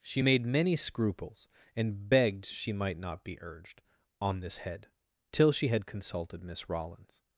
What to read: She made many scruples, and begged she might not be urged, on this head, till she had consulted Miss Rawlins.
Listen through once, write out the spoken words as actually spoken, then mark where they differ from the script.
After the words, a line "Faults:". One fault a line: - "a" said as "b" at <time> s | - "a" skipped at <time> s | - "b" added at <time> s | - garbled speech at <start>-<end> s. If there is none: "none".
She made many scruples, and begged she might not be urged, on this head, till she had consulted Miss Rawlins.
Faults:
none